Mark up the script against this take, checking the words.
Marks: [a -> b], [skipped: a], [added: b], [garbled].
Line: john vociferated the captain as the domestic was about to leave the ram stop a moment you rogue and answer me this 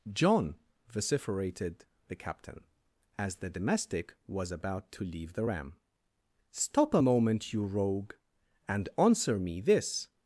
john vociferated the captain as the domestic was about to leave the ram stop a moment you rogue and answer me this